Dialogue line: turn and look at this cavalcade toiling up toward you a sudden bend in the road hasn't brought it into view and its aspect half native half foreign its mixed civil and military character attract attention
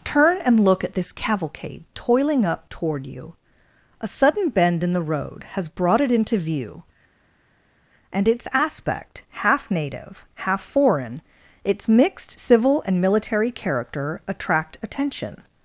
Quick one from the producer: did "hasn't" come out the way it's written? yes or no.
no